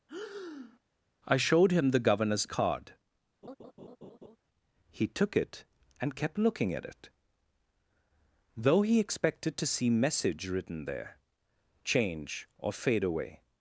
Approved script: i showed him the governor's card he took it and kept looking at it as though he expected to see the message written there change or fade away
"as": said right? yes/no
no